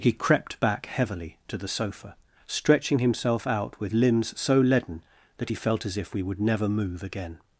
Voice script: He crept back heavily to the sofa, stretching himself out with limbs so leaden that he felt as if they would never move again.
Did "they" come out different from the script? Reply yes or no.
yes